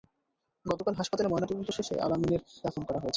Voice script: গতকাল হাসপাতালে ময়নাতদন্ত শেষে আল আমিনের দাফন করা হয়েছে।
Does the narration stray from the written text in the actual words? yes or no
no